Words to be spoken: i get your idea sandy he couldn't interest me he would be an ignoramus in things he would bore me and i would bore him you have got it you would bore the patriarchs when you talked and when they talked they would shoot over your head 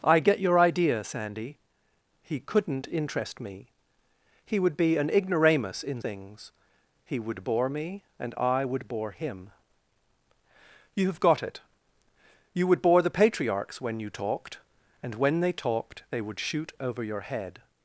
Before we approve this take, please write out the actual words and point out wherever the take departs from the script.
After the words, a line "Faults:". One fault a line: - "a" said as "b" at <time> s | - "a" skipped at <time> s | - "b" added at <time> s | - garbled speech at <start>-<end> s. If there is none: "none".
i get your idea sandy he couldn't interest me he would be an ignoramus in things he would bore me and i would bore him you have got it you would bore the patriarchs when you talked and when they talked they would shoot over your head
Faults:
none